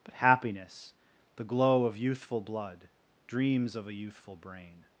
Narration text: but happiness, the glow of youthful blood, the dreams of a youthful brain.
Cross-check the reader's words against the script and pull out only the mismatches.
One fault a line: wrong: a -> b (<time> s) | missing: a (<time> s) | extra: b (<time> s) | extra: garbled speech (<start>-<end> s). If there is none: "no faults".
missing: the (2.9 s)